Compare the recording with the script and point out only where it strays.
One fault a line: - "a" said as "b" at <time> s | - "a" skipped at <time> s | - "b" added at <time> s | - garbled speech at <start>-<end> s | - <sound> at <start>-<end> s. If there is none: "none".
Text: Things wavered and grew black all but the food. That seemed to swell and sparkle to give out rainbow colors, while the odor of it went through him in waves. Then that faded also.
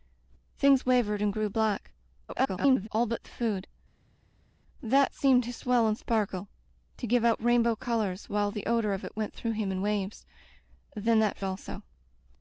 - garbled speech at 2.3-2.9 s
- "faded" skipped at 11.4 s